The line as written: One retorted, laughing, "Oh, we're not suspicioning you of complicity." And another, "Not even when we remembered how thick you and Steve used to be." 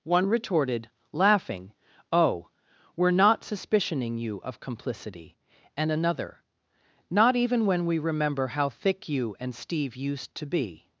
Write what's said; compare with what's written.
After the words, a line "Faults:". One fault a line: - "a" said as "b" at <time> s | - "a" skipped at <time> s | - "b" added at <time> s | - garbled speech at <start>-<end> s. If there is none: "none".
One retorted, laughing, "Oh, we're not suspicioning you of complicity." And another, "Not even when we remember how thick you and Steve used to be."
Faults:
- "remembered" said as "remember" at 8.0 s